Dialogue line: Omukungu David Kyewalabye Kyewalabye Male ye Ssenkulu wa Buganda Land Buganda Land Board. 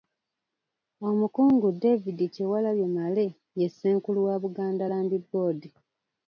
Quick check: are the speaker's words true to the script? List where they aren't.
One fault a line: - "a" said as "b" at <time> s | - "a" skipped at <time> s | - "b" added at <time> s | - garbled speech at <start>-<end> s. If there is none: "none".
- "Kyewalabye" skipped at 2.9 s
- "Buganda Land" skipped at 5.1 s